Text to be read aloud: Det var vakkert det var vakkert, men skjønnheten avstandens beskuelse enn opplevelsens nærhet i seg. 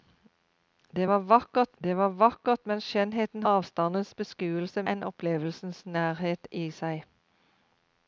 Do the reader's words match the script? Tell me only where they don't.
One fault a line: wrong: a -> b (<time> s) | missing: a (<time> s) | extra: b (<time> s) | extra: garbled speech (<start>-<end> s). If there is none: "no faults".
no faults